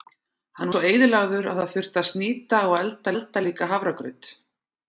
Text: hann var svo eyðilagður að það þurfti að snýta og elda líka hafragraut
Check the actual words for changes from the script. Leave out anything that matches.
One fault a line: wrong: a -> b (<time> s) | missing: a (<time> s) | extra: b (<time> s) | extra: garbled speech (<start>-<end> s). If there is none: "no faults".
missing: var (0.7 s)
extra: elda (3.1 s)